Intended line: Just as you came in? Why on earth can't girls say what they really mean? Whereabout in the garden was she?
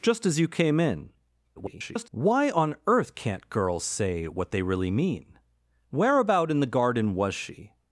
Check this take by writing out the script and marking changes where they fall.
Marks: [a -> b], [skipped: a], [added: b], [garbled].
Just as you came in? [garbled] Why on earth can't girls say what they really mean? Whereabout in the garden was she?